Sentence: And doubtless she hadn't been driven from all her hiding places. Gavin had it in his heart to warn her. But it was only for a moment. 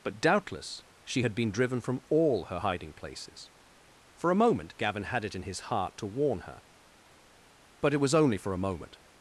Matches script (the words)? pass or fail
fail